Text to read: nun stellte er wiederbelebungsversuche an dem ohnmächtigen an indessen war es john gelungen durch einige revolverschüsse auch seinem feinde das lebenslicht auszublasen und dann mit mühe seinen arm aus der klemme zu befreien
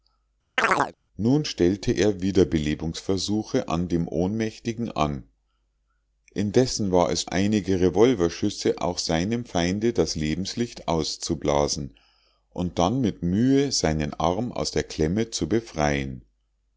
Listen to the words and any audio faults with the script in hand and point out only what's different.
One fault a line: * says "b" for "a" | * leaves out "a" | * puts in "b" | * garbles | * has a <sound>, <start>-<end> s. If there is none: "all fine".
* has a chirp, 0.6-0.9 s
* leaves out "john gelungen durch"